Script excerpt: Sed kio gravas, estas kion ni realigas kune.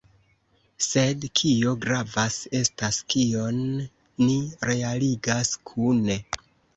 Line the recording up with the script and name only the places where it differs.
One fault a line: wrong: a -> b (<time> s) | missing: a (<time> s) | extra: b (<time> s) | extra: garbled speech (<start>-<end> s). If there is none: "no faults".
no faults